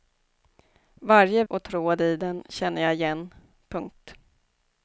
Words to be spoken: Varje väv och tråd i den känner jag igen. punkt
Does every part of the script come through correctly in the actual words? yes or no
no